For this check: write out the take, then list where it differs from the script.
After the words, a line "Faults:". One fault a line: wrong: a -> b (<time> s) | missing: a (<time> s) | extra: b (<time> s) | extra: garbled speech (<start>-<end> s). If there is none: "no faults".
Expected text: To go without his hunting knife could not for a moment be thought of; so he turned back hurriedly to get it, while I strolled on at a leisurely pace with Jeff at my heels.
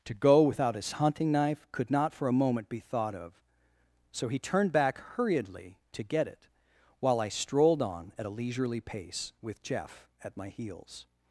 To go without his hunting knife could not for a moment be thought of; so he turned back hurriedly to get it, while I strolled on at a leisurely pace with Jeff at my heels.
Faults:
no faults